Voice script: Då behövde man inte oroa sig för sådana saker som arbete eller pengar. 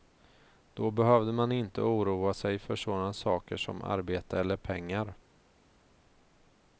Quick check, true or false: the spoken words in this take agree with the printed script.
true